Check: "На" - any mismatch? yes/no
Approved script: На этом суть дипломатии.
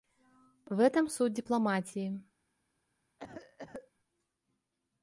yes